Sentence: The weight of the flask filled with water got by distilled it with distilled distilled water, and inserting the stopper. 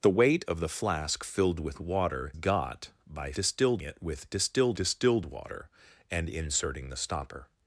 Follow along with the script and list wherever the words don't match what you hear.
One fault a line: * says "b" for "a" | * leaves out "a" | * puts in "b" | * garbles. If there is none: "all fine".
all fine